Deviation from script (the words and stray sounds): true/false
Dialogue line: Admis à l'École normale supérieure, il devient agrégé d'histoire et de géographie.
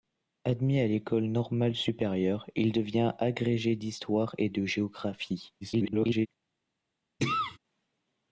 true